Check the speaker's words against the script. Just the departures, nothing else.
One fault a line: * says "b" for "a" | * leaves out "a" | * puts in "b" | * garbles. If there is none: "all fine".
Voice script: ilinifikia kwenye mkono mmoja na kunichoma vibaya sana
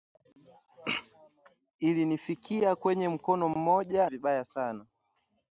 * leaves out "na kunichoma"